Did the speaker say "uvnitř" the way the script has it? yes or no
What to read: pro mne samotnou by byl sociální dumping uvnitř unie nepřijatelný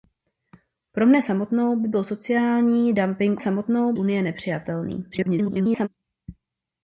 no